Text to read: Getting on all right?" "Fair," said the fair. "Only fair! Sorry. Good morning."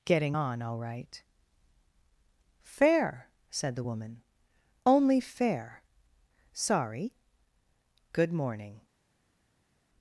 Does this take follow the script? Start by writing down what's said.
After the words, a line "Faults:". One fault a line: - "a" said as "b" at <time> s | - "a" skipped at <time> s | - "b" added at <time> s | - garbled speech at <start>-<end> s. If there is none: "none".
Getting on all right?" "Fair," said the woman. "Only fair! Sorry. Good morning."
Faults:
- "fair" said as "woman" at 3.8 s